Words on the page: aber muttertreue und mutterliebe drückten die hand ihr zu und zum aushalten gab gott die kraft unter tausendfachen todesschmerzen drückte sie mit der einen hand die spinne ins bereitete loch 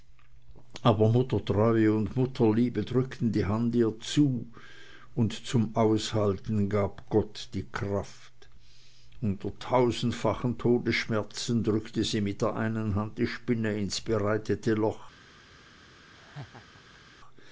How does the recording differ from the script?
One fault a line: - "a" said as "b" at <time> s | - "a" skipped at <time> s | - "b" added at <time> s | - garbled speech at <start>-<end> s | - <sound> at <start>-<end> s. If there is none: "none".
- laugh at 16.1-17.0 s